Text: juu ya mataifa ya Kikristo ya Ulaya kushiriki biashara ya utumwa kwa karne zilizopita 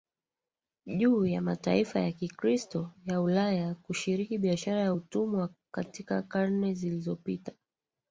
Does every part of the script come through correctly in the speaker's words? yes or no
no